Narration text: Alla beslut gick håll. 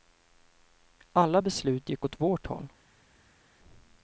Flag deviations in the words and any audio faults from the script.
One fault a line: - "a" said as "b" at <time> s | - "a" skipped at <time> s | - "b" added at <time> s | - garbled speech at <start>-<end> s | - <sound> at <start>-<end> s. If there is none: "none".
- "åt vårt" added at 2.0 s